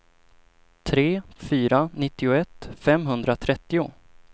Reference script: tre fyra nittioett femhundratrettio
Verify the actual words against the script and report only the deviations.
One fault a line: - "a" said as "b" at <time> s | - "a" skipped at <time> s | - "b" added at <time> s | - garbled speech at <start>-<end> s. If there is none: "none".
none